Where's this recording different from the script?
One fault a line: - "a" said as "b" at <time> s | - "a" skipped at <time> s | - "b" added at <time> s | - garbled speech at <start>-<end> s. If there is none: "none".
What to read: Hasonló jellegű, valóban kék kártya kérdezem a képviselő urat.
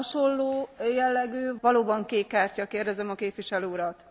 none